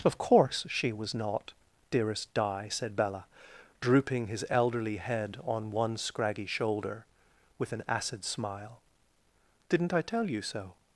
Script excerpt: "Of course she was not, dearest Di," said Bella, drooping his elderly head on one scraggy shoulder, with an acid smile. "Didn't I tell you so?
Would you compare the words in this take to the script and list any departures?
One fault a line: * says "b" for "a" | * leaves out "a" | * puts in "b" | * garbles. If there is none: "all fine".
all fine